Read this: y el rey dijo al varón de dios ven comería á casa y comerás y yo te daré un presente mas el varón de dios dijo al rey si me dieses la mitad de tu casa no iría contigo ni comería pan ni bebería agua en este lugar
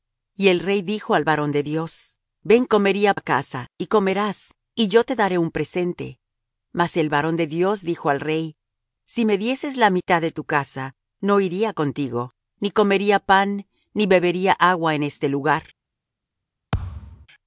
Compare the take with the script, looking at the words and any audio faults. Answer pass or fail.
fail